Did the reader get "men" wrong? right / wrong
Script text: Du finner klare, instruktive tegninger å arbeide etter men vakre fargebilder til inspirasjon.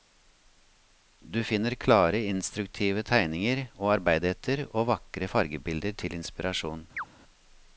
wrong